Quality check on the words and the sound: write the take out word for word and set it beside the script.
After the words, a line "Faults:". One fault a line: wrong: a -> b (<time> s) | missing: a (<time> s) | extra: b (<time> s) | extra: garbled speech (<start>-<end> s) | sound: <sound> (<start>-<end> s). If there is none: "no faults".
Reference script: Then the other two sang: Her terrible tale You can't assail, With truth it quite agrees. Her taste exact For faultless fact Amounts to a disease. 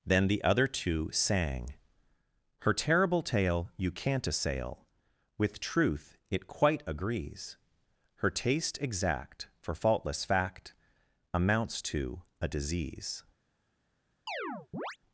Then the other two sang: Her terrible tale You can't assail, With truth it quite agrees. Her taste exact For faultless fact Amounts to a disease.
Faults:
sound: chirp (14.3-15.0 s)